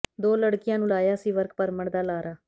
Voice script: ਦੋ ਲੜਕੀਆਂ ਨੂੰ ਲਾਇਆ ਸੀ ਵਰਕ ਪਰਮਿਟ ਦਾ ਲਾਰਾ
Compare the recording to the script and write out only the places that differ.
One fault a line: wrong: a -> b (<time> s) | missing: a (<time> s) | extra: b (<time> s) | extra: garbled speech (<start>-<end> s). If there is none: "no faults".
no faults